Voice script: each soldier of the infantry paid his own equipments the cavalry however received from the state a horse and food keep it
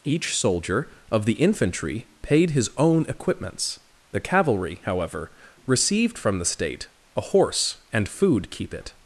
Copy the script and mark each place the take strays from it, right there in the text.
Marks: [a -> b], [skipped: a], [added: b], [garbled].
each soldier of the infantry paid his own equipments the cavalry however received from the state a horse and food keep it